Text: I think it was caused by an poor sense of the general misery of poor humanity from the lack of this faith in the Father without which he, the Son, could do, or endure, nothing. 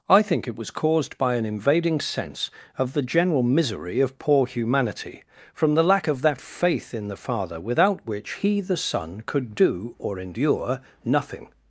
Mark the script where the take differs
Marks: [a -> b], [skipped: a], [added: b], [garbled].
I think it was caused by an [poor -> invading] sense of the general misery of poor humanity from the lack of [this -> that] faith in the Father without which he, the Son, could do, or endure, nothing.